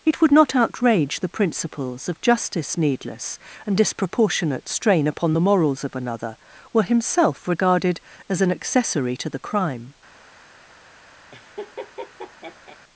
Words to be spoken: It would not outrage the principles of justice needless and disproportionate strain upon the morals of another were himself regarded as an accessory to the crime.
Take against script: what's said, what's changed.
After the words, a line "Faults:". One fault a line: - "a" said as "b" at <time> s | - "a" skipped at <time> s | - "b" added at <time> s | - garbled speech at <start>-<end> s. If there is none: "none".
It would not outrage the principles of justice needless and disproportionate strain upon the morals of another were himself regarded as an accessory to the crime.
Faults:
none